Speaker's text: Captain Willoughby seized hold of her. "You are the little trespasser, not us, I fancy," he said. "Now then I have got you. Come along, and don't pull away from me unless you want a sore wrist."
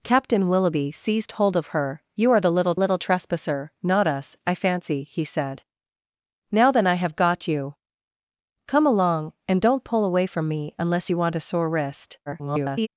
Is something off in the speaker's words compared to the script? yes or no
yes